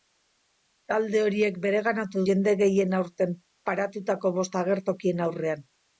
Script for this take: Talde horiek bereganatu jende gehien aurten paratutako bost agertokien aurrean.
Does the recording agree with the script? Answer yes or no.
yes